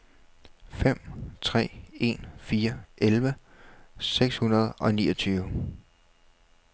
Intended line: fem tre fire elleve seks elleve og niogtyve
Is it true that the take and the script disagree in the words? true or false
true